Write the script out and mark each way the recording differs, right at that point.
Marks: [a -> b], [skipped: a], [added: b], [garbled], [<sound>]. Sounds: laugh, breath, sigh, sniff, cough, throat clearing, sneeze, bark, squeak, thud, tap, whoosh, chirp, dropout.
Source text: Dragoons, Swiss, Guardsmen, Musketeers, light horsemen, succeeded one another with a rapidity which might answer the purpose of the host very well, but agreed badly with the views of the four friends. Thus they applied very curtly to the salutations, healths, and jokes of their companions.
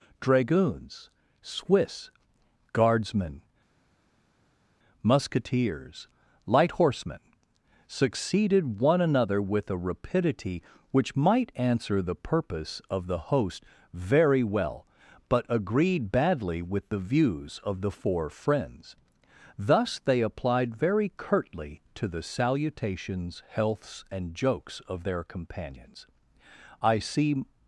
Dragoons, Swiss, Guardsmen, Musketeers, light horsemen, succeeded one another with a rapidity which might answer the purpose of the host very well, but agreed badly with the views of the four friends. Thus they applied very curtly to the salutations, healths, and jokes of their companions. [added: I see]